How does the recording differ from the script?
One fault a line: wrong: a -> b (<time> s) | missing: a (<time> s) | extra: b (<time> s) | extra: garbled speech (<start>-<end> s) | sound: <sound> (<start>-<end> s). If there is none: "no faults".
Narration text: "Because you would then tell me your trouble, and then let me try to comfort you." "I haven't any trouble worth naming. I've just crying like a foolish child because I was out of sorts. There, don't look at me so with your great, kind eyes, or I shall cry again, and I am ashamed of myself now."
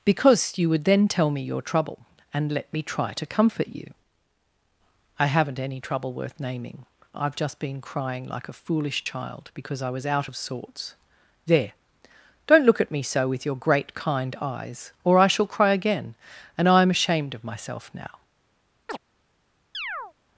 missing: then (2.5 s)
extra: been (7.6 s)
sound: chirp (18.9-19.0 s)
sound: chirp (19.7-20.1 s)